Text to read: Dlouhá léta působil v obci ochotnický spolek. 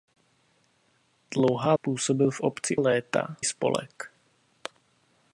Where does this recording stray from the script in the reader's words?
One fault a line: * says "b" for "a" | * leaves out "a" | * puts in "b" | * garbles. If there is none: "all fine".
* leaves out "léta"
* says "léta" for "ochotnický"